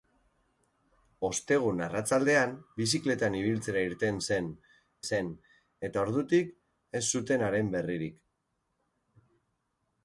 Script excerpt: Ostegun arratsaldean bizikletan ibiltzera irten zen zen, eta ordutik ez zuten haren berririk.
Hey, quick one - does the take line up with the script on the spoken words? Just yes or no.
yes